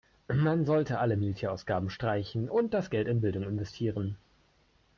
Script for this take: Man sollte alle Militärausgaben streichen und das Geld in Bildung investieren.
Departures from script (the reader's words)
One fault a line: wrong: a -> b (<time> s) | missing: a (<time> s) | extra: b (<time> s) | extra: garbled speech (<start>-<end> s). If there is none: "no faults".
no faults